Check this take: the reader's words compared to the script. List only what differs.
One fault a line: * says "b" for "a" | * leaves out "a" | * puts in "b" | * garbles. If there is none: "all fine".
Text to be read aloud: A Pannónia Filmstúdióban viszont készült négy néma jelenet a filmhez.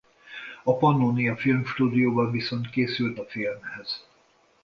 * leaves out "négy néma jelenet"